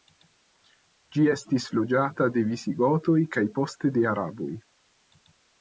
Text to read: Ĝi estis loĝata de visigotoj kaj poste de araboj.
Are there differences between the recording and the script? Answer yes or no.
no